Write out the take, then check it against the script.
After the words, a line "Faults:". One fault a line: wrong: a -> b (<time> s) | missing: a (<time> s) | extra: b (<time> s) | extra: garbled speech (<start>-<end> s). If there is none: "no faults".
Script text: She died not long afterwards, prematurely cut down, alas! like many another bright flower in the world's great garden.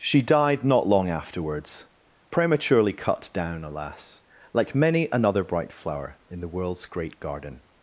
She died not long afterwards, prematurely cut down, alas! like many another bright flower in the world's great garden.
Faults:
no faults